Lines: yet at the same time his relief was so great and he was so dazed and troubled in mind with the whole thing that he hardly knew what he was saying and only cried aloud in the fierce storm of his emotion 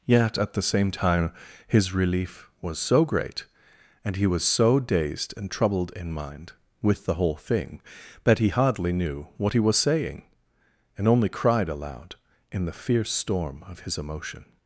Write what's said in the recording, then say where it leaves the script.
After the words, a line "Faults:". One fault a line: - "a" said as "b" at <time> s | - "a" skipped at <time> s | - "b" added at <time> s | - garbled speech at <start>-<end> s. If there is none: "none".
yet at the same time his relief was so great and he was so dazed and troubled in mind with the whole thing that he hardly knew what he was saying and only cried aloud in the fierce storm of his emotion
Faults:
none